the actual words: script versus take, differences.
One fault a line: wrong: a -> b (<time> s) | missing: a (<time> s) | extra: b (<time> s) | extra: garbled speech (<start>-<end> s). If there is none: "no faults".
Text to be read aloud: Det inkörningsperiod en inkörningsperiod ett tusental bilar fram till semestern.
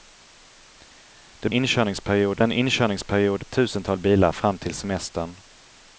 no faults